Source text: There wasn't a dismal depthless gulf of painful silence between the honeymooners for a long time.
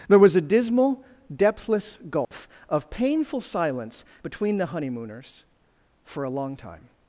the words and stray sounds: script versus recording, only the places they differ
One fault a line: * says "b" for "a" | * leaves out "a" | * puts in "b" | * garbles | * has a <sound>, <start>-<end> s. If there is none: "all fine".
* says "was" for "wasn't"
* has a dropout, 2.2-2.3 s